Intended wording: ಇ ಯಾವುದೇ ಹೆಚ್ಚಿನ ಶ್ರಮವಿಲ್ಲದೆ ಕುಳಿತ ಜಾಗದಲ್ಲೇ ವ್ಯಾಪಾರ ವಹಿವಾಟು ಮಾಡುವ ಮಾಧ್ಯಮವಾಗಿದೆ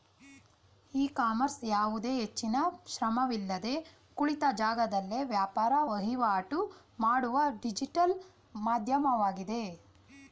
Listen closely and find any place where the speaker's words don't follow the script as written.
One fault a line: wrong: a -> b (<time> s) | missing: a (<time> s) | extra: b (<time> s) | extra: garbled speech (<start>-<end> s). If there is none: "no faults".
extra: ಕಾಮರ್ಸ್ (1.2 s)
extra: ಡಿಜಿಟಲ್ (7.6 s)